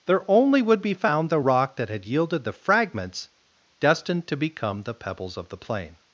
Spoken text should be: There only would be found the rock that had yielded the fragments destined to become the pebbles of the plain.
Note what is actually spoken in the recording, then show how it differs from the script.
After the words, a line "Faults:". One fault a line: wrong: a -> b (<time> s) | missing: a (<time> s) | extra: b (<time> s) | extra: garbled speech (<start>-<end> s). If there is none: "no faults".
There only would be found the rock that had yielded the fragments destined to become the pebbles of the plain.
Faults:
no faults